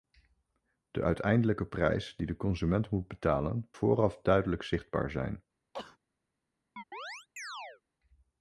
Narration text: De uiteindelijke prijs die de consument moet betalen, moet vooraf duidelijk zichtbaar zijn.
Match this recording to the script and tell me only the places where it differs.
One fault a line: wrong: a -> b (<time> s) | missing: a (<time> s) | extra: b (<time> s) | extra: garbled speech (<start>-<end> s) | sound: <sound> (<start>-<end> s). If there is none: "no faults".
missing: moet (3.7 s)
sound: sneeze (5.7-6.0 s)
sound: chirp (6.8-7.8 s)